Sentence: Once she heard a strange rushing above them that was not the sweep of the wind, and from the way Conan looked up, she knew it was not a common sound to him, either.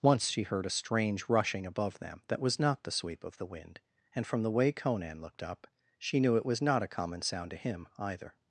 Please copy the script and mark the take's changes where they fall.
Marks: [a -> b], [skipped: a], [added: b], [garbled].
Once she heard a strange rushing above them that was not the sweep of the wind, and from the way Conan looked up, she knew it was not a common sound to him, either.